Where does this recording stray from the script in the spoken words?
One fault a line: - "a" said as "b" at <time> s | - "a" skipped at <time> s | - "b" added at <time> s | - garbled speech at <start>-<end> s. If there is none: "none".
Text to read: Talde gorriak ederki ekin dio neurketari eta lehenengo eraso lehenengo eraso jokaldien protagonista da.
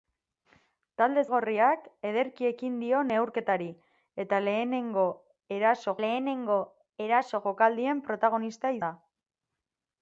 none